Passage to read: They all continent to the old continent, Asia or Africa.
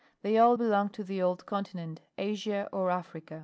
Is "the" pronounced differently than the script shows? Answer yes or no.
no